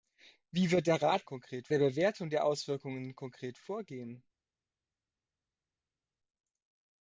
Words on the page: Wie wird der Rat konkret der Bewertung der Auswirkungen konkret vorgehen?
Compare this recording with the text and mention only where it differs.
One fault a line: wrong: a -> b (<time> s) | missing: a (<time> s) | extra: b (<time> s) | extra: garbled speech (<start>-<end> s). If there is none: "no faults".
no faults